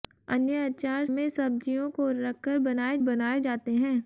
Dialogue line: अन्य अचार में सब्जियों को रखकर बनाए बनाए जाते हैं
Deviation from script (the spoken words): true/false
false